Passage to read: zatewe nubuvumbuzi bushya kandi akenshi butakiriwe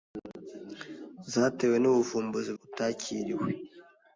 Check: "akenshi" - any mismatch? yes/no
yes